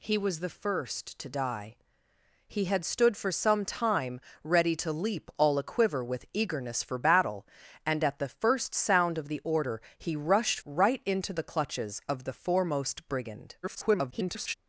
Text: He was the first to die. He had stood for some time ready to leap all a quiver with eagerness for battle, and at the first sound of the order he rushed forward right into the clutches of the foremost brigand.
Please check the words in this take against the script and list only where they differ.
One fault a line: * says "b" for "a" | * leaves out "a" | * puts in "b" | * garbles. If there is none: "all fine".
* leaves out "forward"
* garbles